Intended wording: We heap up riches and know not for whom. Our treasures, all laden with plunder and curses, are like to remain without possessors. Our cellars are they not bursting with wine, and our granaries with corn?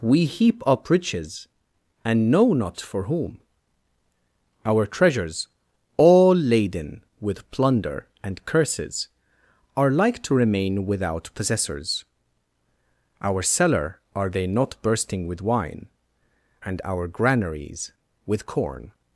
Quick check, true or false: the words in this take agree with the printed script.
false